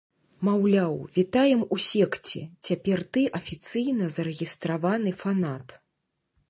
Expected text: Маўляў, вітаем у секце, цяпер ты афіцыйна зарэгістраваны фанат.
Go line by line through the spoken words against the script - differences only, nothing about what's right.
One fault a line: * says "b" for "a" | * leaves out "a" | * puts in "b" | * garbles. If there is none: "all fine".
all fine